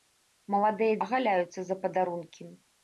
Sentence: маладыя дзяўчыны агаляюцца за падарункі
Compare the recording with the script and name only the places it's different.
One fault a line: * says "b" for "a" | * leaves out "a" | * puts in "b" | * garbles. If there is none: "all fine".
* leaves out "дзяўчыны"